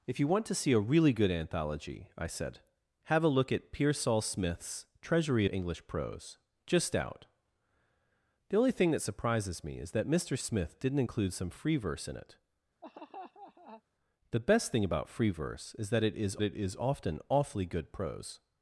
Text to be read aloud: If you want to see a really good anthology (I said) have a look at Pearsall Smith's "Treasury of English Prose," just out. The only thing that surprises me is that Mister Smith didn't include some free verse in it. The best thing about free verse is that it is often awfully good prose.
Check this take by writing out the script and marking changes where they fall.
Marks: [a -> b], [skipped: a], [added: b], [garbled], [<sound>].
If you want to see a really good anthology (I said) have a look at Pearsall Smith's "Treasury [skipped: of] English Prose," just out. The only thing that surprises me is that Mister Smith didn't include some free verse in it. [laugh] The best thing about free verse is that it is [added: it is] often awfully good prose.